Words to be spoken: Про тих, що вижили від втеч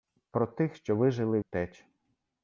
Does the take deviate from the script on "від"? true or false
true